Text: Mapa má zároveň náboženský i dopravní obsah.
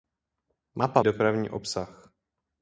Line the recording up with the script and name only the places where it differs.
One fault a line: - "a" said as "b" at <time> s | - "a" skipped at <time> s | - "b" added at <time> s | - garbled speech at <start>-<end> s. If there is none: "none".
- "má zároveň náboženský" skipped at 1.0 s